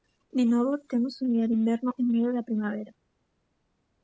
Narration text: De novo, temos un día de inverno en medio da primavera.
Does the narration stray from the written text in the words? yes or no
no